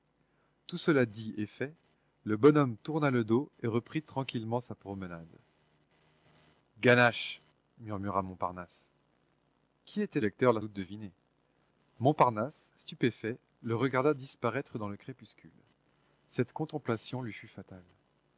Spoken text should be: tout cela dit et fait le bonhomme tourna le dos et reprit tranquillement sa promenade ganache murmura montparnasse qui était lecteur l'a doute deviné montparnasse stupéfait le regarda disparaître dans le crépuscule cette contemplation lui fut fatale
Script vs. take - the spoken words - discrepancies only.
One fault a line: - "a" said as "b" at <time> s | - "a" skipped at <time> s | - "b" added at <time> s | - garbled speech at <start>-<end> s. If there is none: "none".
none